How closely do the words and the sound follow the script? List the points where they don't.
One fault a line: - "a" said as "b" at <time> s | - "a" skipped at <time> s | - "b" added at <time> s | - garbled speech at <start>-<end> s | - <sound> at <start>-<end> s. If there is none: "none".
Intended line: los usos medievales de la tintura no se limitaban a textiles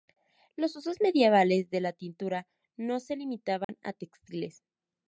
- dropout at 3.6-3.7 s